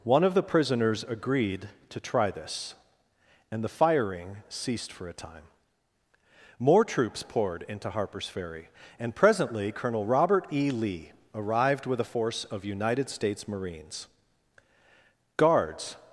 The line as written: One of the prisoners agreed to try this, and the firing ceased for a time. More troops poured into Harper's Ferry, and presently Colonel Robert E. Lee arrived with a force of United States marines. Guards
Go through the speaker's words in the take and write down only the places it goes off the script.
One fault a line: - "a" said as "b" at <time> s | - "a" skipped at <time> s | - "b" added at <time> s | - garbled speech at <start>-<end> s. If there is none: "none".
none